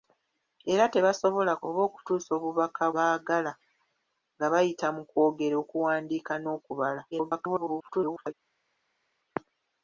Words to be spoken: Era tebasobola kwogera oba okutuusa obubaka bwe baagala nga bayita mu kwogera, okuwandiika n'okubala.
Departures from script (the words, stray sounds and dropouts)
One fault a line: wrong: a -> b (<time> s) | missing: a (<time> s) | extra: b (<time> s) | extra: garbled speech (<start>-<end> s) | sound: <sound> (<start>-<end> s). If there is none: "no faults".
missing: kwogera (1.5 s)
missing: bwe (2.8 s)
extra: garbled speech (7.1-8.3 s)